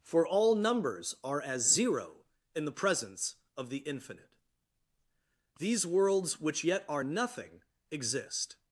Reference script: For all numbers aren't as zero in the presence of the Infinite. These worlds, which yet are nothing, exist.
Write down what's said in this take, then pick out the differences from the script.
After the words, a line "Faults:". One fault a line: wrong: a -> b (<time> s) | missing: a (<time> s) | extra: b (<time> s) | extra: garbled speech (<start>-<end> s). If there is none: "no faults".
For all numbers are as zero in the presence of the Infinite. These worlds, which yet are nothing, exist.
Faults:
wrong: aren't -> are (1.2 s)